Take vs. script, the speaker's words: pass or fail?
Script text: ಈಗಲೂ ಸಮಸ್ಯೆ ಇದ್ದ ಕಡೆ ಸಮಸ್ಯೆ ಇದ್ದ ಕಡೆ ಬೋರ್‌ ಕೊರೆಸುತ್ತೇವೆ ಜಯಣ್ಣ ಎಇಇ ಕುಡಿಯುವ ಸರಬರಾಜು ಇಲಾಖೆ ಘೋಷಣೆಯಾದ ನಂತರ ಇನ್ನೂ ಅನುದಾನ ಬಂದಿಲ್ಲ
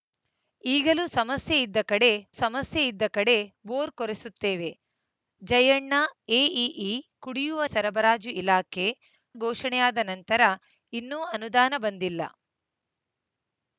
pass